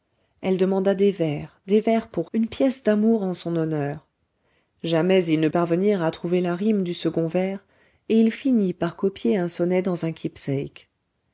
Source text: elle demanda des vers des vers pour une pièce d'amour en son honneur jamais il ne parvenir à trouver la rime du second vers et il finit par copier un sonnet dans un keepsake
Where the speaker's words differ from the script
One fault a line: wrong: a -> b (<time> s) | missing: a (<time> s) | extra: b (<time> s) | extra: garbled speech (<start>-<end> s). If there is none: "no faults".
no faults